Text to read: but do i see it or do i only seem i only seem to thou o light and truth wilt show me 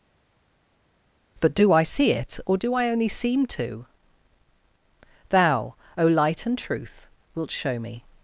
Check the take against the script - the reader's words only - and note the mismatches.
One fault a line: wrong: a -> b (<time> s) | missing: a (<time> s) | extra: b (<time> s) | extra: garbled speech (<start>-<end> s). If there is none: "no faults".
missing: i only seem (3.5 s)